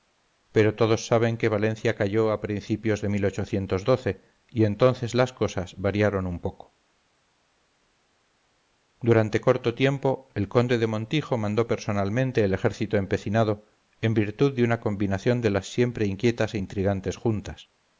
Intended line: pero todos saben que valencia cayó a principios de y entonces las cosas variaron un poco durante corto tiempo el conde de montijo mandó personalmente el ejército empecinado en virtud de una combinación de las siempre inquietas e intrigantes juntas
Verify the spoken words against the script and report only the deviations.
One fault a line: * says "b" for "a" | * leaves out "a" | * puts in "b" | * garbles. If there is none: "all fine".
all fine